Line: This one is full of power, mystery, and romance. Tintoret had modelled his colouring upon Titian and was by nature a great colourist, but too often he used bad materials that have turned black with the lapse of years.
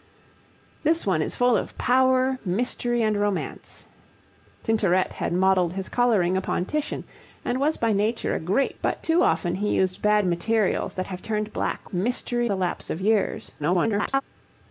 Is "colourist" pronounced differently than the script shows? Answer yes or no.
yes